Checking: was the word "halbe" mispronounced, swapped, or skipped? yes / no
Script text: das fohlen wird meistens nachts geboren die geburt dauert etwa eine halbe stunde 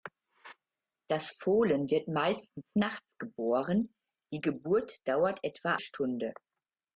yes